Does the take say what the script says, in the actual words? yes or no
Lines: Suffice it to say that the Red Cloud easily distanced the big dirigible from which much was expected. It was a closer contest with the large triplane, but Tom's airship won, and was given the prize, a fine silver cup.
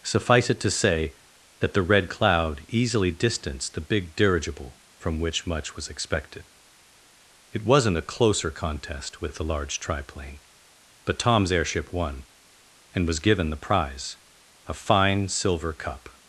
no